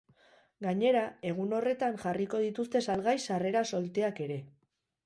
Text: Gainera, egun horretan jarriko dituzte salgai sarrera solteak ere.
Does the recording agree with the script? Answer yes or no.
yes